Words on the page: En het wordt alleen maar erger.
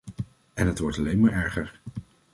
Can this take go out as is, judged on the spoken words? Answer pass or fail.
pass